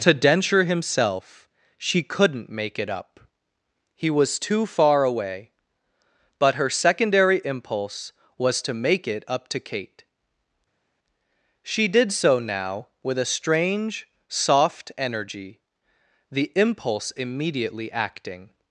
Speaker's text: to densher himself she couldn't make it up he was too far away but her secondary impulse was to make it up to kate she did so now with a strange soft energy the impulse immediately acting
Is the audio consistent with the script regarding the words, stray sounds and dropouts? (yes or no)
yes